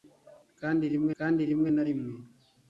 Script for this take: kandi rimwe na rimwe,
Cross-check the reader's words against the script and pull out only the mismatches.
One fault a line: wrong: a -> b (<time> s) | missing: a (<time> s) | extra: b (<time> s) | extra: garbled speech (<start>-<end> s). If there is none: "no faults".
extra: kandi rimwe (1.2 s)